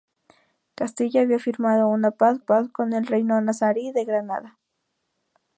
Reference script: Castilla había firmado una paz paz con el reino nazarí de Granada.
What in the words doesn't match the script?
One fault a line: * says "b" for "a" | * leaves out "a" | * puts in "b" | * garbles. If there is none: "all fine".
all fine